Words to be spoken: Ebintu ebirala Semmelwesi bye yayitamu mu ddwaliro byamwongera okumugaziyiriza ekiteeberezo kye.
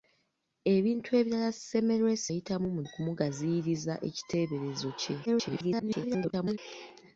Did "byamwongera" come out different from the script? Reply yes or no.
yes